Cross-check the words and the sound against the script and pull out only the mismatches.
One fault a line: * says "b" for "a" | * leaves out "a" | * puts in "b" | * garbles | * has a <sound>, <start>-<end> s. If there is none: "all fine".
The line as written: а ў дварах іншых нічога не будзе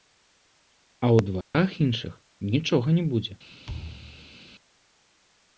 * has a dropout, 1.4-1.5 s
* has a thud, 3.7-4.4 s